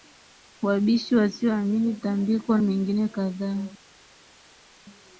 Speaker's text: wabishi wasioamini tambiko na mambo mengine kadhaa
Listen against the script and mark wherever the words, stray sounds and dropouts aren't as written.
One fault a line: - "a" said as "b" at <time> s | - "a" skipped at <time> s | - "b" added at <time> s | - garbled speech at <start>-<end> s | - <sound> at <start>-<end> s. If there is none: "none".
- "na mambo" skipped at 2.6 s